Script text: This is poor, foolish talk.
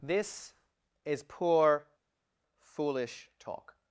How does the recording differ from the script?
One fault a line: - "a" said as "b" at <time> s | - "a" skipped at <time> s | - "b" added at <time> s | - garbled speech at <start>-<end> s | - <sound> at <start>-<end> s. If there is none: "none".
none